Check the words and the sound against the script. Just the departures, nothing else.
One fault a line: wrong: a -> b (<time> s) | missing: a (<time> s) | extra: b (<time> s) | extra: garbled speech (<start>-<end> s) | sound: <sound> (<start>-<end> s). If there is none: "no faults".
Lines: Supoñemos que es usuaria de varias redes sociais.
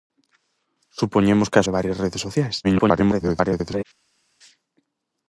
missing: usuaria (1.7 s)
extra: garbled speech (2.6-3.8 s)